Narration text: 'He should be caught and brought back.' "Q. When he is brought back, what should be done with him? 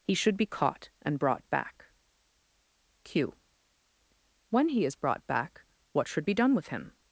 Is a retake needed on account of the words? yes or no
no